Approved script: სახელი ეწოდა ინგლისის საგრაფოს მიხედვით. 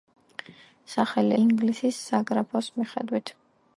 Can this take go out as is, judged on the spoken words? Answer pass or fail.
fail